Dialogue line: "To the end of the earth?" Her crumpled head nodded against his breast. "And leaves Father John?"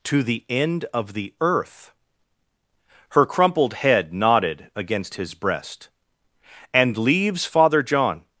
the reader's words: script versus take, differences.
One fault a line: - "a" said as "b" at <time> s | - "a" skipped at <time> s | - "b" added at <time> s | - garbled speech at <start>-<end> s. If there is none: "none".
none